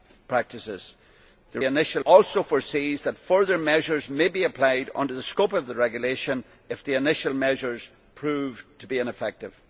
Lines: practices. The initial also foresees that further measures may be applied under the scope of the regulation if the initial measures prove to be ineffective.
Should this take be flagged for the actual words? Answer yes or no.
no